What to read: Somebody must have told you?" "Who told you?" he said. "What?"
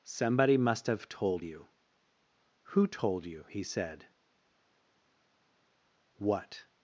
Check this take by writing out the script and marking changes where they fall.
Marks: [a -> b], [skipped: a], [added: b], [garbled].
Somebody must have told you?" "Who told you?" he said. "What?"